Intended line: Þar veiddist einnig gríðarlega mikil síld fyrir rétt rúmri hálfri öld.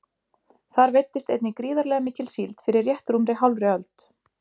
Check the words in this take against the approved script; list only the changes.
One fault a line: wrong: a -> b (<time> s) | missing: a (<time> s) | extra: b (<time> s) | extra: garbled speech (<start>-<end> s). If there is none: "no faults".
no faults